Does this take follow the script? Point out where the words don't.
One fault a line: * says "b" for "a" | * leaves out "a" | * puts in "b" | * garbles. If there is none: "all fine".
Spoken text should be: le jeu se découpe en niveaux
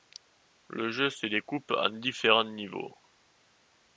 * puts in "différents"